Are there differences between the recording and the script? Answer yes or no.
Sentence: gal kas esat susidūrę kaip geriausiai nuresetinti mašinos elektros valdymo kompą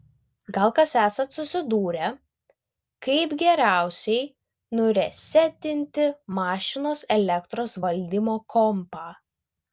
no